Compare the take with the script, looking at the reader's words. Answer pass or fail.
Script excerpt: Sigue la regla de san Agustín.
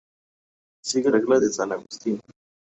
fail